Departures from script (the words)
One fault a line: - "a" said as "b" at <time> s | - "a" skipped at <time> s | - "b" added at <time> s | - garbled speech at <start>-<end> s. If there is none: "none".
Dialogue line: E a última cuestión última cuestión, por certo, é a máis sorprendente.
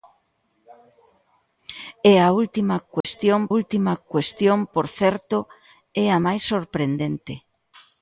none